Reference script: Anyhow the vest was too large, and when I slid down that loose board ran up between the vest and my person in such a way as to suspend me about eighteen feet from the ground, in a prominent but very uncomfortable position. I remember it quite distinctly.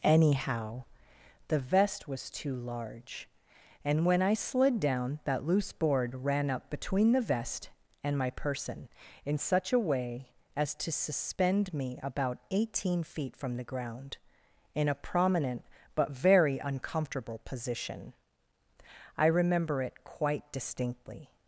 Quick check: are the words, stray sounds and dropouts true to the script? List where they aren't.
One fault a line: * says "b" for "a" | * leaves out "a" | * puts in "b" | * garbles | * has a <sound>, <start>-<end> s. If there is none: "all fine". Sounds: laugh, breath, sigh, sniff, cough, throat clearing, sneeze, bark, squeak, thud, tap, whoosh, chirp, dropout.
all fine